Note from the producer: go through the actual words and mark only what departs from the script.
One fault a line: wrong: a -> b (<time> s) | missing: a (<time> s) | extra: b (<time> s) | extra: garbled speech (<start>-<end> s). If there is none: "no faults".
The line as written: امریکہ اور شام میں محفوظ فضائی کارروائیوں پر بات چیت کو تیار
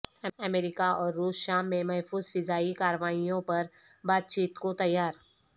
extra: روس (1.1 s)